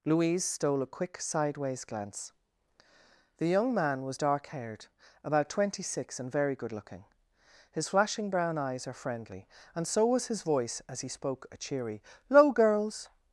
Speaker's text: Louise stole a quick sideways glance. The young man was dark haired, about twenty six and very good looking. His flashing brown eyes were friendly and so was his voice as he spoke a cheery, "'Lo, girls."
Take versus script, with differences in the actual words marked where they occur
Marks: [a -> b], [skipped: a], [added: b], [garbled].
Louise stole a quick sideways glance. The young man was dark haired, about twenty six and very good looking. His flashing brown eyes [were -> are] friendly and so was his voice as he spoke a cheery, "'Lo, girls."